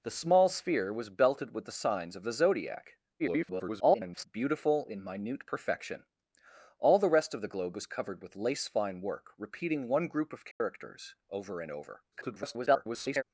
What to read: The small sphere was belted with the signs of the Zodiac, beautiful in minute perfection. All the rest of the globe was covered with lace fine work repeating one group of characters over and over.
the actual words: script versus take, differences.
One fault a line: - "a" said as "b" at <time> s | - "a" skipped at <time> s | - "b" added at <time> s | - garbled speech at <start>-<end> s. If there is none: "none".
- garbled speech at 3.2-4.2 s
- garbled speech at 12.1-13.2 s